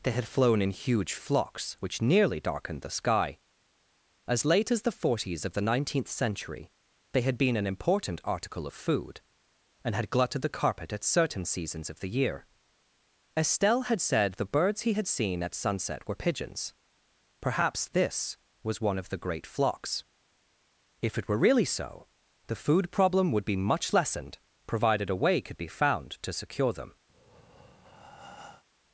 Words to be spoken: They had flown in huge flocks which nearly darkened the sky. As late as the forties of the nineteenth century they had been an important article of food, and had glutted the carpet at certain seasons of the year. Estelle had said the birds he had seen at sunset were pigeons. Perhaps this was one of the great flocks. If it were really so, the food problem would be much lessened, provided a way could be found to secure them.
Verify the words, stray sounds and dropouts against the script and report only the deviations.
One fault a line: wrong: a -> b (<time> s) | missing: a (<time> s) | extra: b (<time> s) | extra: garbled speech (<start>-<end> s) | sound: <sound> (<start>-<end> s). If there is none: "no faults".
sound: breath (27.1-28.6 s)